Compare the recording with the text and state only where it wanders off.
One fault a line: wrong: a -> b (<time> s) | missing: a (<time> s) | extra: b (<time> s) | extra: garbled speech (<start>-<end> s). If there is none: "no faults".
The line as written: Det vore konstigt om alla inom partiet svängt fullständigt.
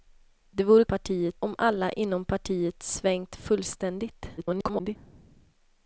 wrong: konstigt -> partiet (0.8 s)
extra: garbled speech (4.4-5.0 s)